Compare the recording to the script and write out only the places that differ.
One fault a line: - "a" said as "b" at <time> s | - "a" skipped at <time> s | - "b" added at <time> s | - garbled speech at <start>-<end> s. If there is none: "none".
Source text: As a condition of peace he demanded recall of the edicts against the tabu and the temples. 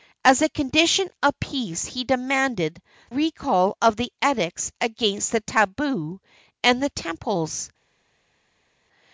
none